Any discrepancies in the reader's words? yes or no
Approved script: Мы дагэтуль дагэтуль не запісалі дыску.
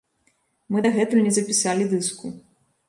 yes